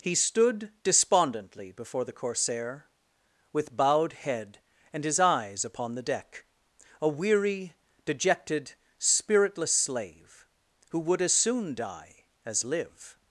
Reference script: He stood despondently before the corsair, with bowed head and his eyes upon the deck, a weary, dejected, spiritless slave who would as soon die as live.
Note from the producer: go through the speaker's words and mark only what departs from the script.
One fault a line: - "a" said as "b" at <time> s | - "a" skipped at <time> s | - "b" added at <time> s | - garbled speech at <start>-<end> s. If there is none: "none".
none